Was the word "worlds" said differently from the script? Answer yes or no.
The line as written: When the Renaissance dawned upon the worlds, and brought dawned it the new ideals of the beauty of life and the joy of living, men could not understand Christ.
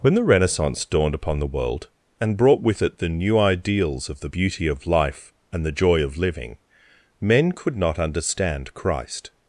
yes